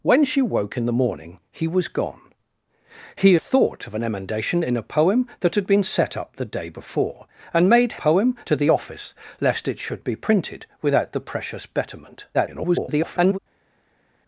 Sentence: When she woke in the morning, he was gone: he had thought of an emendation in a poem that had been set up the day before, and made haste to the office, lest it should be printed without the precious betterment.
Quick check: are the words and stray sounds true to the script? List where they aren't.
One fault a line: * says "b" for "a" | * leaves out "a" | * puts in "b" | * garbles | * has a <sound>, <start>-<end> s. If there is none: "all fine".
* leaves out "had"
* says "poem" for "haste"
* garbles